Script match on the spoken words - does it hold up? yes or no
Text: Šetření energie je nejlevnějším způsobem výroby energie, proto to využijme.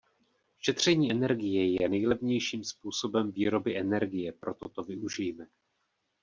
yes